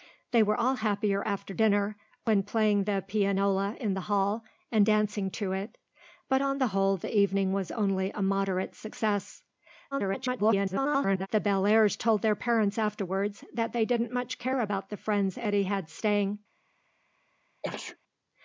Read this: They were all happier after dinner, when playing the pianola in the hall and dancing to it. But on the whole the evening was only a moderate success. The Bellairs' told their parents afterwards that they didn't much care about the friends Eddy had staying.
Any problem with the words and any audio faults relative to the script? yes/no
yes